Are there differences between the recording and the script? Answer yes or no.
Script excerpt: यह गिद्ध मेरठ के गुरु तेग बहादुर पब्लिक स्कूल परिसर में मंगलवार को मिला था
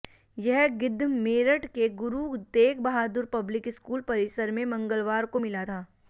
no